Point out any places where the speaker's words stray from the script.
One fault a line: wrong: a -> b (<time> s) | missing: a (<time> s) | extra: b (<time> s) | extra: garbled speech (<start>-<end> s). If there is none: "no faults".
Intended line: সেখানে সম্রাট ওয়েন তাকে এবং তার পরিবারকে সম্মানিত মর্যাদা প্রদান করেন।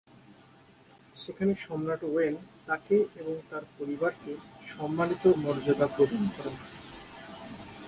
no faults